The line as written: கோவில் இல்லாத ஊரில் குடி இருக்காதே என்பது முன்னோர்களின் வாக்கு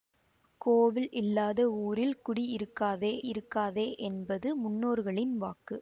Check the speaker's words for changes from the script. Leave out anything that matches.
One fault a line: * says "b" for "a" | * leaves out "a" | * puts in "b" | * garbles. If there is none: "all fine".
* puts in "இருக்காதே"